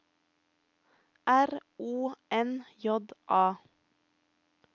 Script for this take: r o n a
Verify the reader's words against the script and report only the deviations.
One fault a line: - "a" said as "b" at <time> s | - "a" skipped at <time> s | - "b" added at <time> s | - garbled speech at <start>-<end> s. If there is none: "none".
- "j" added at 2.8 s